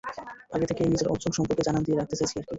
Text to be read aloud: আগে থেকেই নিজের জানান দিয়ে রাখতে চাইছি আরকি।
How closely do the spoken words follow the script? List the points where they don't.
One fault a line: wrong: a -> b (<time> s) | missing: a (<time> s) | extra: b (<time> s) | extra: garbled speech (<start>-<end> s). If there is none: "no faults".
extra: অর্জন সম্পর্কে (1.1 s)